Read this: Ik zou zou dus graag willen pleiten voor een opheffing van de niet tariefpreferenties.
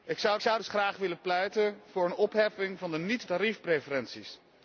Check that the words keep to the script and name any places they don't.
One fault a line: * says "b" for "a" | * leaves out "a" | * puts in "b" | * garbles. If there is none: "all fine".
all fine